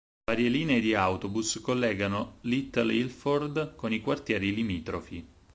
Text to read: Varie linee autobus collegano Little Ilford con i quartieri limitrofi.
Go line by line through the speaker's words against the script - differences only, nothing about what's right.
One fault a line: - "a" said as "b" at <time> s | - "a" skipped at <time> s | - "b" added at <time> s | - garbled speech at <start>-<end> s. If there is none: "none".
- "di" added at 0.8 s